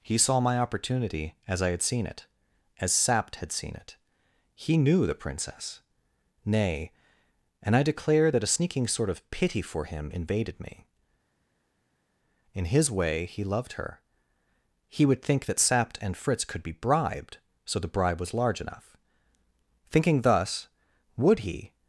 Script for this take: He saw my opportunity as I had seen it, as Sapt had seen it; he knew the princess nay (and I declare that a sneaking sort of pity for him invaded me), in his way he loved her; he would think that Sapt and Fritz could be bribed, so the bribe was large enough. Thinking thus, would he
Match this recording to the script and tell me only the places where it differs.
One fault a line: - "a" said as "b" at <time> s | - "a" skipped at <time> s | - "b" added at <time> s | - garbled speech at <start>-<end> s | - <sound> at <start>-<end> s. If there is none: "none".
none